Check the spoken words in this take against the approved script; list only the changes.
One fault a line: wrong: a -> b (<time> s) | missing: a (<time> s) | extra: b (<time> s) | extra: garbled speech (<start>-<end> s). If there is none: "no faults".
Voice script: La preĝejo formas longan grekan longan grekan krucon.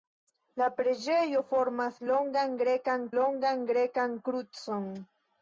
no faults